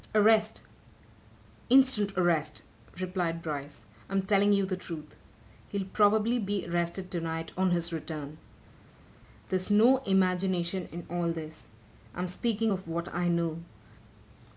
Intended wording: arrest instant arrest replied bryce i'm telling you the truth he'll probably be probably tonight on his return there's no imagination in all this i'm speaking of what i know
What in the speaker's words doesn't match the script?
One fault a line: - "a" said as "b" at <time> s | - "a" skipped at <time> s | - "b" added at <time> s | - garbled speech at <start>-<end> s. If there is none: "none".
- "probably" said as "arrested" at 6.6 s